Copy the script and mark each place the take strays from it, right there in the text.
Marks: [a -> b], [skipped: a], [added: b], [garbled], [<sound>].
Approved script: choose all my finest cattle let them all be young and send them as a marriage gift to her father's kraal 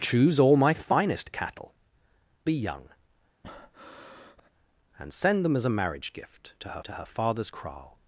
choose all my finest cattle [skipped: let them all] be young [breath] and send them as a marriage gift to her [added: to her] father's kraal